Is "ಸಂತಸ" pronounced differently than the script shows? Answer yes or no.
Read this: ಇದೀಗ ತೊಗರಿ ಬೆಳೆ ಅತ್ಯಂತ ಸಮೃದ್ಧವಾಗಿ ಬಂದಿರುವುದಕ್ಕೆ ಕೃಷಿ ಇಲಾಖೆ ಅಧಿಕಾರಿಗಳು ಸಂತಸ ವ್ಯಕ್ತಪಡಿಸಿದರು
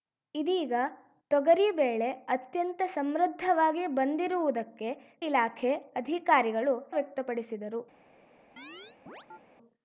yes